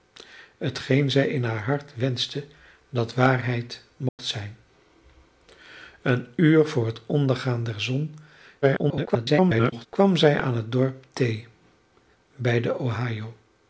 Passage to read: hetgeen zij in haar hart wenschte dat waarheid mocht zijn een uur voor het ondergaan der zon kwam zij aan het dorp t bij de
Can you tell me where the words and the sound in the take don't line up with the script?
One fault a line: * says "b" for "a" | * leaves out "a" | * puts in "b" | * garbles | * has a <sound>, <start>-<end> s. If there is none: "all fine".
* has a dropout, 4.1-4.2 s
* garbles